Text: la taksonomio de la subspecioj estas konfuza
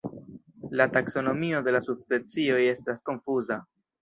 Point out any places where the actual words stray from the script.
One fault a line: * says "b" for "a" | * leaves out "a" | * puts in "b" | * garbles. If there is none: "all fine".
all fine